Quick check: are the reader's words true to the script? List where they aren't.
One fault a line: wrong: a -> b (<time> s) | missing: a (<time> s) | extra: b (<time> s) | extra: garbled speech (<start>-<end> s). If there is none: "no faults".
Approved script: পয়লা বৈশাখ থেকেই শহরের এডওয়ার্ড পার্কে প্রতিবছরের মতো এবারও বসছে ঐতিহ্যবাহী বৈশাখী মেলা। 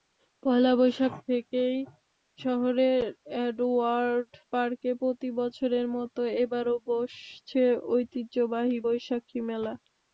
no faults